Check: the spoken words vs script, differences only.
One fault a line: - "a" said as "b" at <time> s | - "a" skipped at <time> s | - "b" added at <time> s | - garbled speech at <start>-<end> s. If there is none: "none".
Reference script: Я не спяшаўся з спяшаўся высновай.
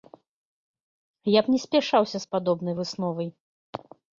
- "б" added at 1.4 s
- "спяшаўся" said as "падобнай" at 2.4 s